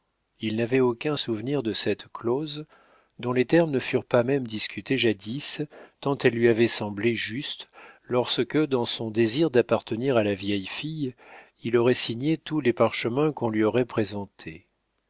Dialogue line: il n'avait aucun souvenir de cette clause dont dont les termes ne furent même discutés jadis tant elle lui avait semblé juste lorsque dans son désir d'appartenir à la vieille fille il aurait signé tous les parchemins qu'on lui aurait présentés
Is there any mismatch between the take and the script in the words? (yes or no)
yes